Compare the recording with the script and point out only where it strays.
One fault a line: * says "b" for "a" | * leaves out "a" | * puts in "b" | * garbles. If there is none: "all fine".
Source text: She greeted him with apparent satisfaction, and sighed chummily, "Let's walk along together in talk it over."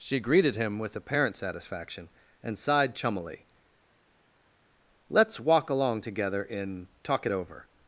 all fine